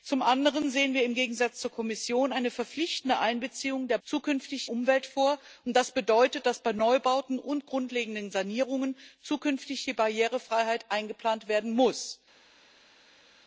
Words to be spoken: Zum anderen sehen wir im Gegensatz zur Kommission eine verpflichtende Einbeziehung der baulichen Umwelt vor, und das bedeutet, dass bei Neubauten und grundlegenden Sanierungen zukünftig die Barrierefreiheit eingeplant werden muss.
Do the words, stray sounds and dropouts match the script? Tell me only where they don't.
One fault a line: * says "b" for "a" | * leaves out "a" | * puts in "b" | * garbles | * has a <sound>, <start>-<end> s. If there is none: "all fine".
* says "zukünftig" for "baulichen"